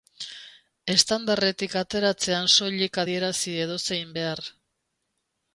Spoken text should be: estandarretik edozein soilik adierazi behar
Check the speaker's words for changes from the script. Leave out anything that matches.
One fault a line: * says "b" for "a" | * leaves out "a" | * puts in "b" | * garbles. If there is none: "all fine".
* says "ateratzean" for "edozein"
* puts in "edozein"